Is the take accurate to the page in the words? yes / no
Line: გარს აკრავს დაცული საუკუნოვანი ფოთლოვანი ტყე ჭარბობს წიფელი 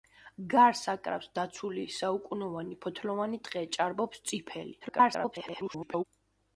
no